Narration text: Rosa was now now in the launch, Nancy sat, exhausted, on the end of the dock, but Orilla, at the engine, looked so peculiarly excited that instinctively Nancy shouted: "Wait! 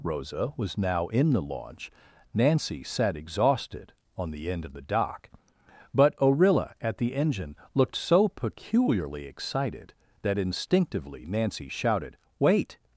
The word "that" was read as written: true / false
true